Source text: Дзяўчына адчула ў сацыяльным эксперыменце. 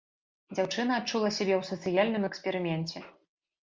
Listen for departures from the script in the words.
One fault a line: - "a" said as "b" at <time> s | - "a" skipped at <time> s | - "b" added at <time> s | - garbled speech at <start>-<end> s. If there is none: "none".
- "сябе" added at 1.4 s